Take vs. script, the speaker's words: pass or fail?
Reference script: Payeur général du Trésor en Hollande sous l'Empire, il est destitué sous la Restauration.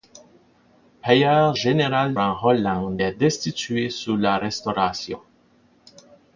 fail